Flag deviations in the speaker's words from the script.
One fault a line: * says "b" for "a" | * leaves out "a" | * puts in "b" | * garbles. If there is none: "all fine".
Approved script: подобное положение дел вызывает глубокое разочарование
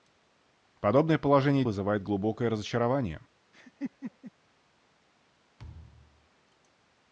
* leaves out "дел"